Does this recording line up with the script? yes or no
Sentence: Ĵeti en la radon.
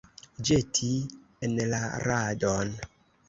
yes